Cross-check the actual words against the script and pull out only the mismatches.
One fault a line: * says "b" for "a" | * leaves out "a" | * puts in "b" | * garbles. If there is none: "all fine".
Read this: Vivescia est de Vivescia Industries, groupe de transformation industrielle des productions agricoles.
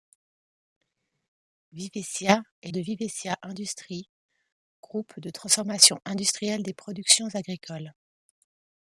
all fine